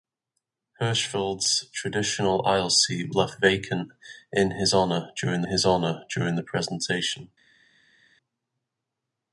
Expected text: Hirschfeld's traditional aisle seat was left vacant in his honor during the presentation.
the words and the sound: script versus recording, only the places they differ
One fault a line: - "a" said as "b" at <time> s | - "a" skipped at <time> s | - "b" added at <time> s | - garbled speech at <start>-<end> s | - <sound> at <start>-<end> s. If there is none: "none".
- "was" skipped at 3.1 s
- "his honor during" added at 5.4 s